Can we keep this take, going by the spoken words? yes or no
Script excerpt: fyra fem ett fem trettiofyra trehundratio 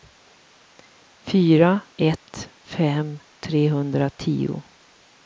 no